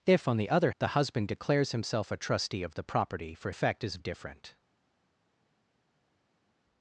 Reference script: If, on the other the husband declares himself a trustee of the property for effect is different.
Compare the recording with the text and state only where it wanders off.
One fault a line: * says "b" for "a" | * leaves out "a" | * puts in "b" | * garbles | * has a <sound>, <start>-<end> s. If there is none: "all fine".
all fine